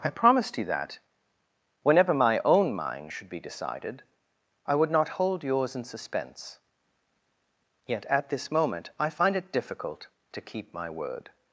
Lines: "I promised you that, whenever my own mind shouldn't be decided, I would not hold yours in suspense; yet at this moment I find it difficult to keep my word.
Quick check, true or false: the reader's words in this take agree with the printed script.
false